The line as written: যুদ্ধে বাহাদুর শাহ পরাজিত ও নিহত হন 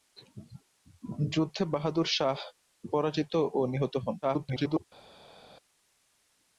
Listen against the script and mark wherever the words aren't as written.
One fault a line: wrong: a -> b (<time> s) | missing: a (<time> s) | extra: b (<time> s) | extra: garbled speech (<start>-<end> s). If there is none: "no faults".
extra: garbled speech (4.2-4.8 s)